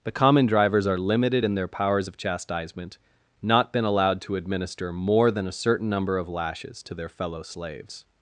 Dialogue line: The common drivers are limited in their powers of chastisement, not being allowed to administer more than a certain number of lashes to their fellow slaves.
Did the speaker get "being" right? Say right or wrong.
wrong